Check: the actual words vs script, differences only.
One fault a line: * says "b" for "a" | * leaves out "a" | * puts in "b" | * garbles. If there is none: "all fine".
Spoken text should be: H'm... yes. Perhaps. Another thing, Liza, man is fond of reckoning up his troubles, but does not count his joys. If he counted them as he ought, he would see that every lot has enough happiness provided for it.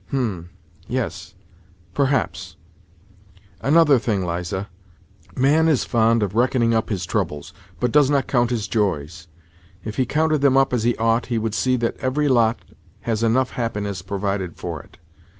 * puts in "up"